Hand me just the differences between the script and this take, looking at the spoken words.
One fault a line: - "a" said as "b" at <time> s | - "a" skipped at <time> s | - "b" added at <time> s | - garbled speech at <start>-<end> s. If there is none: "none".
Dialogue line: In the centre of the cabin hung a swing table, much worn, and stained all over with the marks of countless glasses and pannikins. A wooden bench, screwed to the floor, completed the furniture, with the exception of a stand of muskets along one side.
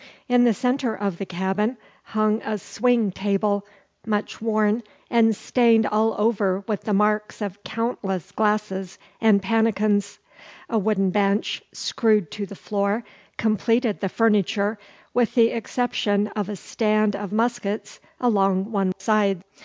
none